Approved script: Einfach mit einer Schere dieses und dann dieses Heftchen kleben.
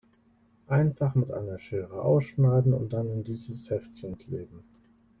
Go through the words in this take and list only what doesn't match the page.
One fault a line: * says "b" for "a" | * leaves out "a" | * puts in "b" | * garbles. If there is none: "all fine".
* says "ausschneiden" for "dieses"
* puts in "in"